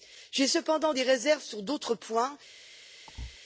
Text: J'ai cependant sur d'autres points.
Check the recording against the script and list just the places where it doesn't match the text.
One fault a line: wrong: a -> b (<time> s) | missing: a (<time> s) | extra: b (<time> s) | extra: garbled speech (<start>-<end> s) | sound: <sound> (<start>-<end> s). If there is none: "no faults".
extra: des réserves (0.9 s)
sound: thud (3.1-3.4 s)